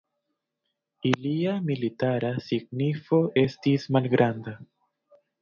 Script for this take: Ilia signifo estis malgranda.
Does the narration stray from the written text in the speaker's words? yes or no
yes